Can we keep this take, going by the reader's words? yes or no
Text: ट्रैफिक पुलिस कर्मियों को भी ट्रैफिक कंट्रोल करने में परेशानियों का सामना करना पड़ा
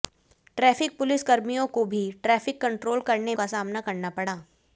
no